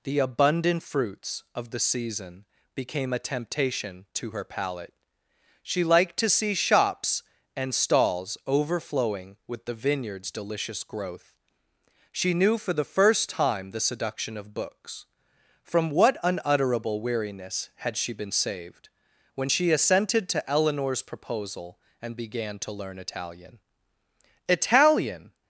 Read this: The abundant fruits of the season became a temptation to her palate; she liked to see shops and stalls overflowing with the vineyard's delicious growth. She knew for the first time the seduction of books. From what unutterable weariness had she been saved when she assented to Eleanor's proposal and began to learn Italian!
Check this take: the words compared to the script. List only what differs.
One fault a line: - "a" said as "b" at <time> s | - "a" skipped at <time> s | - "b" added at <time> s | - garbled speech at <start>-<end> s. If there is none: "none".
- "Italian" added at 24.5 s